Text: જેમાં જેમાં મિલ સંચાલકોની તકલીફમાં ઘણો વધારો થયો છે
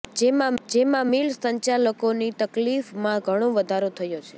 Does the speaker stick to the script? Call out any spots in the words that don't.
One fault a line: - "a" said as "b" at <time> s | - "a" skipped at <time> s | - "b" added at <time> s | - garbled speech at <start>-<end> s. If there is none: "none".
none